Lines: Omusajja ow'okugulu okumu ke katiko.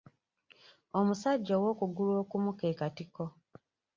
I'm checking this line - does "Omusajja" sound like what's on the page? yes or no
yes